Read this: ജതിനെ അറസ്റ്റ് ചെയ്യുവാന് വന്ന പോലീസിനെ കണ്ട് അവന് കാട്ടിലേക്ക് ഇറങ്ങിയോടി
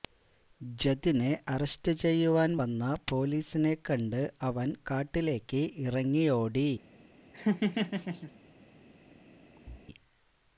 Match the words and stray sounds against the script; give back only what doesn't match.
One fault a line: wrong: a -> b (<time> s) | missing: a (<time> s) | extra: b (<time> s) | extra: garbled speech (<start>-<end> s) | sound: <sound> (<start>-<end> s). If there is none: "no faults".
sound: laugh (7.3-8.3 s)
sound: thud (9.6-9.9 s)